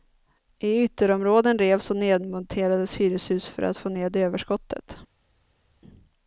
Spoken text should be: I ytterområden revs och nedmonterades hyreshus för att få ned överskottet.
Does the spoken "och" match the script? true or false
true